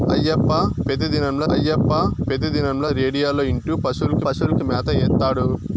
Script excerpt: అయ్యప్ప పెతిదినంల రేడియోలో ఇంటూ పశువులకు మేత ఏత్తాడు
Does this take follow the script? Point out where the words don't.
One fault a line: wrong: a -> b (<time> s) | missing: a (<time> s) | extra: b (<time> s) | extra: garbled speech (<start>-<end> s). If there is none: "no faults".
extra: అయ్యప్ప పెతిదినంల (1.5 s)
extra: పశువులకు (4.2 s)